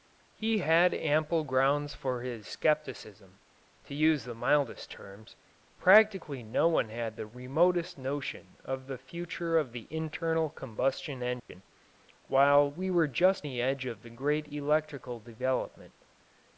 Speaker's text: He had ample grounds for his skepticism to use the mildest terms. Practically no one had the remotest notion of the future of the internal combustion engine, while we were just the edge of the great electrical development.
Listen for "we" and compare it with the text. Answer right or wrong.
right